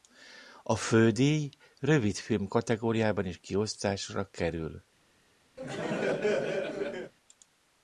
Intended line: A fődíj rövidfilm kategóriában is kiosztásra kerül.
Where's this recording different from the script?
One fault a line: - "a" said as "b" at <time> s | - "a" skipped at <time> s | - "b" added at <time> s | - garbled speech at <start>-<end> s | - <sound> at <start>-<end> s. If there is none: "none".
- laugh at 5.6-7.1 s